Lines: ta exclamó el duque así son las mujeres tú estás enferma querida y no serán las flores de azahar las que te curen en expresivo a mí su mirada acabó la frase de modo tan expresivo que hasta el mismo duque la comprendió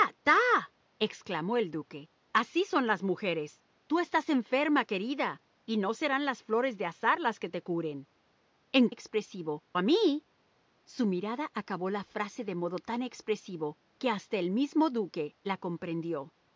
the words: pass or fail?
pass